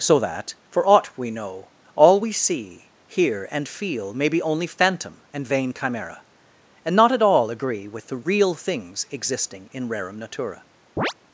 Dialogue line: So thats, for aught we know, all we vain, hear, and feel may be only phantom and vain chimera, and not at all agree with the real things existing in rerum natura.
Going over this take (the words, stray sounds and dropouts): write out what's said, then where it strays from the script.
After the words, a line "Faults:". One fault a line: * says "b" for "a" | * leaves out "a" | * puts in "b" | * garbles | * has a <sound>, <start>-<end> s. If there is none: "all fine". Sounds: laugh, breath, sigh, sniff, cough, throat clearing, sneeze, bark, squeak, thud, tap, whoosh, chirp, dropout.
So that, for aught we know, all we see, hear, and feel may be only phantom and vain chimera, and not at all agree with the real things existing in rerum natura.
Faults:
* says "that" for "thats"
* says "see" for "vain"
* has a chirp, 11.0-11.1 s